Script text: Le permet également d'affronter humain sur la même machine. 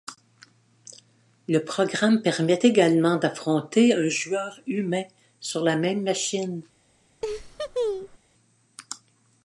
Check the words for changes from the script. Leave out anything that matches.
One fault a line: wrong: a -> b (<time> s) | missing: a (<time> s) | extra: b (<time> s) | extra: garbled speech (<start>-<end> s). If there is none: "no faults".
extra: programme (1.6 s)
extra: un joueur (3.9 s)